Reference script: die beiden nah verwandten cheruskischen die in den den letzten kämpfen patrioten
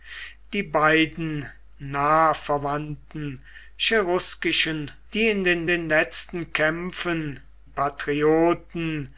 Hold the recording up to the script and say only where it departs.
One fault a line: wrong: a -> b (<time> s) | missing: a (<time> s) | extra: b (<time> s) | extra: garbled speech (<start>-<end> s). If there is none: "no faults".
no faults